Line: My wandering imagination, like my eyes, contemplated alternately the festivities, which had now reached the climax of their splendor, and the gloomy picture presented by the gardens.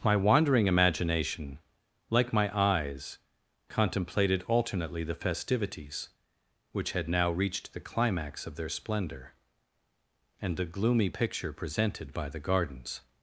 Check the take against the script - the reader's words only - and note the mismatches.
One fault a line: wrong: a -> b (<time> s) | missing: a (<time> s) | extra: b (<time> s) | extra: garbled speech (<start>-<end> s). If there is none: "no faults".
no faults